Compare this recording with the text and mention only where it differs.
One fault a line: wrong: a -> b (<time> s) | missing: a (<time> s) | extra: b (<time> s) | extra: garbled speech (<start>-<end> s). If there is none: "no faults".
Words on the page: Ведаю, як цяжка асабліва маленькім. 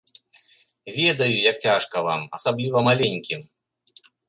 extra: вам (2.0 s)